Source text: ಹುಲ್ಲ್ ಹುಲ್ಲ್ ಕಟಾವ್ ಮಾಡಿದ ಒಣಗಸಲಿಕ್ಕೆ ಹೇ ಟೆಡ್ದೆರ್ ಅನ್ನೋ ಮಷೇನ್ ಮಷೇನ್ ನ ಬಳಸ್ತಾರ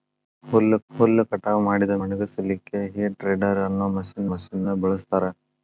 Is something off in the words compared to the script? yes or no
no